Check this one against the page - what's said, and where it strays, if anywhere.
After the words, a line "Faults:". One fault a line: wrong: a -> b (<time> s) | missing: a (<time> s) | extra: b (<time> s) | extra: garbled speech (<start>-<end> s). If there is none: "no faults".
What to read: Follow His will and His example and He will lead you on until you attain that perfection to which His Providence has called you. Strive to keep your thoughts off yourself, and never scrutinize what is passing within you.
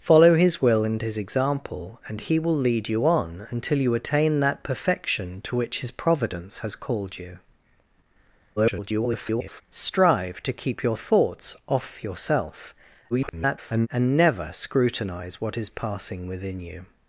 Follow His will and His example and He will lead you on until you attain that perfection to which His Providence has called you. [garbled] Strive to keep your thoughts off yourself, [garbled] and never scrutinize what is passing within you.
Faults:
extra: garbled speech (8.6-9.6 s)
extra: garbled speech (13.1-13.9 s)